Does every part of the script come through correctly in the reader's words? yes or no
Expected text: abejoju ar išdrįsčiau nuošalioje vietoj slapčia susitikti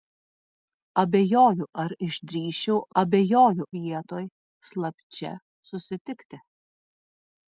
no